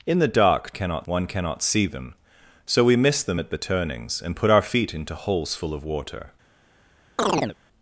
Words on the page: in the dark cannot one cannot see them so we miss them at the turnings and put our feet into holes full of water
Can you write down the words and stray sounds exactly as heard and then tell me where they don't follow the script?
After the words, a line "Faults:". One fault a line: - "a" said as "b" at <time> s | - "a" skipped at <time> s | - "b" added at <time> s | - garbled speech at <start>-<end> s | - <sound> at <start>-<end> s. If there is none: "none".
in the dark cannot one cannot see them so we miss them at the turnings and put our feet into holes full of water
Faults:
- chirp at 7.2-7.6 s